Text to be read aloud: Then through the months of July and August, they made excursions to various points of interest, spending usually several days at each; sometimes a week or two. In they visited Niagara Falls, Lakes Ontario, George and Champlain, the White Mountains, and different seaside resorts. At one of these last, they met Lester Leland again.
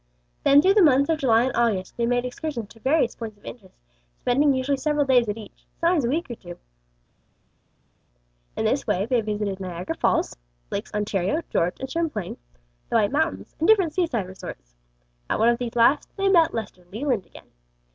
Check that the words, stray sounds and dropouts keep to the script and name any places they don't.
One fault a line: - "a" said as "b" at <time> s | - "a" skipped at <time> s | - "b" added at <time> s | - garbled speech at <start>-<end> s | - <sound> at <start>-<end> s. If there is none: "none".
- "this way" added at 8.6 s